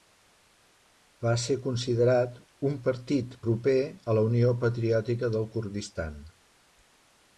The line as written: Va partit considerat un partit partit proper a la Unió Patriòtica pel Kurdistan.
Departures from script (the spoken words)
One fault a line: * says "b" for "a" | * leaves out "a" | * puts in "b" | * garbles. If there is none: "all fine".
* says "ser" for "partit"
* leaves out "partit"
* says "del" for "pel"